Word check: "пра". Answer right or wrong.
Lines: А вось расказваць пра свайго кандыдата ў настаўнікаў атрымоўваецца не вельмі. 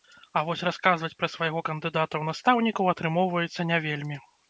right